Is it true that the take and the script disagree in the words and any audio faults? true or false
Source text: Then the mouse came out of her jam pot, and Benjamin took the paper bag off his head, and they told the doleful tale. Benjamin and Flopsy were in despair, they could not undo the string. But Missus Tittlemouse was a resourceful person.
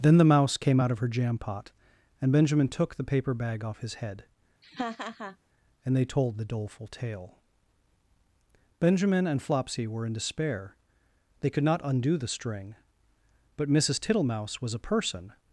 true